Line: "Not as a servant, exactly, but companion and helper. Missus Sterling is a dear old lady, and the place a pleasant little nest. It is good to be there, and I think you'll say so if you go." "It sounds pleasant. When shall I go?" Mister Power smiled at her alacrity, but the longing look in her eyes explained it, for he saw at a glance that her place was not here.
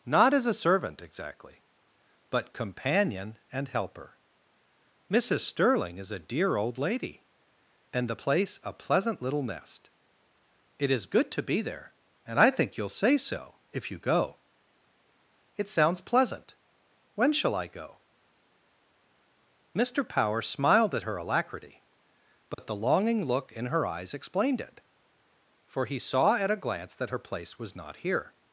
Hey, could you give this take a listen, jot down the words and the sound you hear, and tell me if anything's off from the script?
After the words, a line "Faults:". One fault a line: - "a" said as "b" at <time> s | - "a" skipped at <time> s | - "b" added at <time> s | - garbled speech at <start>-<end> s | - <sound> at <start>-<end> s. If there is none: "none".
"Not as a servant, exactly, but companion and helper. Missus Sterling is a dear old lady, and the place a pleasant little nest. It is good to be there, and I think you'll say so if you go." "It sounds pleasant. When shall I go?" Mister Power smiled at her alacrity, but the longing look in her eyes explained it, for he saw at a glance that her place was not here.
Faults:
- dropout at 22.5-22.6 s